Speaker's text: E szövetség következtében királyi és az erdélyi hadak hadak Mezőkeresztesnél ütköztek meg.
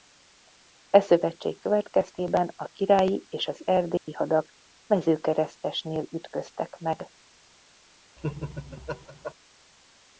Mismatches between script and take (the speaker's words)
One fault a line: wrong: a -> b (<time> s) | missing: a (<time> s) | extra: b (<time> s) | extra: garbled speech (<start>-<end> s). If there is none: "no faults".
extra: a (2.5 s)
missing: hadak (4.5 s)